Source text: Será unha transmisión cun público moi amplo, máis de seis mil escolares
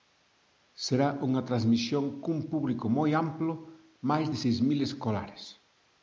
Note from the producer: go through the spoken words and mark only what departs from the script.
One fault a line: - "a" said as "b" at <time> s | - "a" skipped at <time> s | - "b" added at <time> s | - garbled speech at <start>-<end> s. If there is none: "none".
none